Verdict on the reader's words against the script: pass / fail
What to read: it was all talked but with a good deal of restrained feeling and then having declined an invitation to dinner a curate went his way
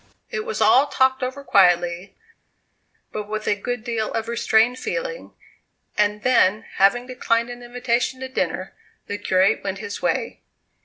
fail